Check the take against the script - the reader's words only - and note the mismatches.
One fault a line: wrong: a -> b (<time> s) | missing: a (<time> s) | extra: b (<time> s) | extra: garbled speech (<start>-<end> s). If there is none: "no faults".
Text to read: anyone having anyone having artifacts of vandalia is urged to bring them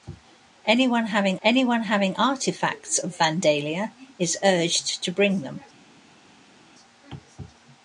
no faults